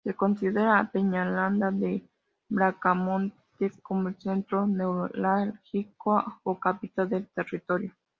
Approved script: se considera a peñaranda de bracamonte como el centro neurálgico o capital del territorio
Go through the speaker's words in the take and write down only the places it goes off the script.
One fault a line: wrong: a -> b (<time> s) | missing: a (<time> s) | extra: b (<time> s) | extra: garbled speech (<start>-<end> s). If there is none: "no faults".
no faults